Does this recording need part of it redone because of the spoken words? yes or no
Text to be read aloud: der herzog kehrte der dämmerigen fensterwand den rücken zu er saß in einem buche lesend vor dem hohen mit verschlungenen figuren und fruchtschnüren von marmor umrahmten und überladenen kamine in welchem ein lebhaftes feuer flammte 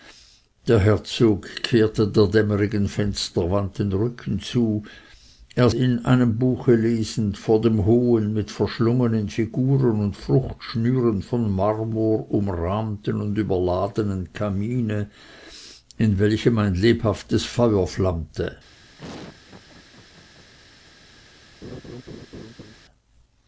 yes